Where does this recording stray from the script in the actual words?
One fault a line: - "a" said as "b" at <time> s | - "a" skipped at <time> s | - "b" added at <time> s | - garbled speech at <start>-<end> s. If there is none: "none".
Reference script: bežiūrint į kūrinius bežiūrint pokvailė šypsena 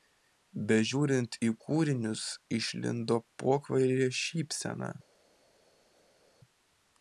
- "bežiūrint" said as "išlindo" at 2.6 s